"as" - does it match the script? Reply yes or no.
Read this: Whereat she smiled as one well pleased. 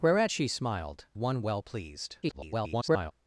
no